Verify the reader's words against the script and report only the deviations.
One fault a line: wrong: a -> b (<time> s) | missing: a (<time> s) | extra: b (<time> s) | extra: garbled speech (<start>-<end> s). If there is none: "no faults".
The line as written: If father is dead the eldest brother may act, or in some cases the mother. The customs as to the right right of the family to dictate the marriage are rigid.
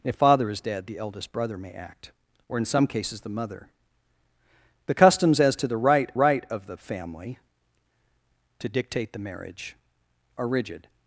no faults